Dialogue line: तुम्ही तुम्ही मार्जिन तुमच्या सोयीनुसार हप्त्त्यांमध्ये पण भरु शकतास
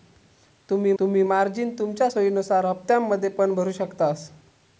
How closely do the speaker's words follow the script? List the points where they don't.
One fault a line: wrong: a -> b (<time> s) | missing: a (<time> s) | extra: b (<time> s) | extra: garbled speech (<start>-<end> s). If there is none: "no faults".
no faults